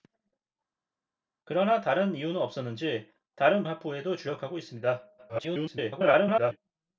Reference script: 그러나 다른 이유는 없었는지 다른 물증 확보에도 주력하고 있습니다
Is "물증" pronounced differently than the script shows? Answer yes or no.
yes